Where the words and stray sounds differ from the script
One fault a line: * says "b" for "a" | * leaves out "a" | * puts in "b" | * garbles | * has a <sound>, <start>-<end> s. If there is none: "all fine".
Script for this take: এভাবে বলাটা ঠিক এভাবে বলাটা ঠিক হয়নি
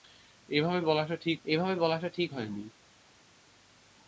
all fine